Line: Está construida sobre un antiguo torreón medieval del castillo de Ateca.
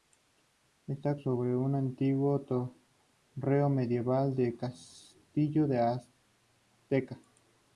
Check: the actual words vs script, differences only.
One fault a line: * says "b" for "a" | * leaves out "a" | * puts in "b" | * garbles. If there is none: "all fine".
* leaves out "construida"